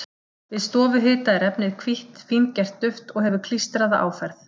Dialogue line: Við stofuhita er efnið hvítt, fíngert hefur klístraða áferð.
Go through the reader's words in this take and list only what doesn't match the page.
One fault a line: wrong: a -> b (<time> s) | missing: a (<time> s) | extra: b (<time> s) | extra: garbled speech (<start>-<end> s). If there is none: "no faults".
extra: duft og (2.8 s)